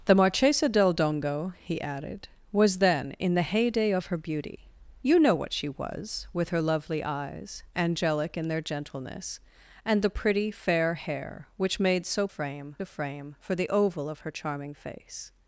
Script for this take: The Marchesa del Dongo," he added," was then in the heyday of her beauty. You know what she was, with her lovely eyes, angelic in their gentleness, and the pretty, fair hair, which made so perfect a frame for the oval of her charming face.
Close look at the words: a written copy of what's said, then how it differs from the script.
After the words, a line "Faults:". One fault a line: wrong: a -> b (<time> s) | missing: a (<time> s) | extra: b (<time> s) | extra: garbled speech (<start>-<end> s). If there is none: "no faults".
The Marchesa del Dongo," he added," was then in the heyday of her beauty. You know what she was, with her lovely eyes, angelic in their gentleness, and the pretty, fair hair, which made so frame a frame for the oval of her charming face.
Faults:
wrong: perfect -> frame (12.3 s)